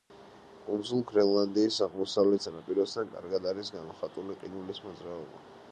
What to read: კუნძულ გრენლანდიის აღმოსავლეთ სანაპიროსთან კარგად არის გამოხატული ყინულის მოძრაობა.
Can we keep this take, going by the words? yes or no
yes